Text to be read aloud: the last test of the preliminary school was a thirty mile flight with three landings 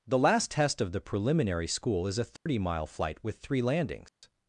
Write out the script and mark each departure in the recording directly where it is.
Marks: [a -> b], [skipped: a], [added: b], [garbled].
the last test of the preliminary school [was -> is] a thirty mile flight with three landings